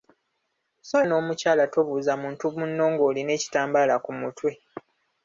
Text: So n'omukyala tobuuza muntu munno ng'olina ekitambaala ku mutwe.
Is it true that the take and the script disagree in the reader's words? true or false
false